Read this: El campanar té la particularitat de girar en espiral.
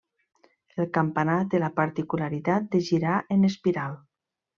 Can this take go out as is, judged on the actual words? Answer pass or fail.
pass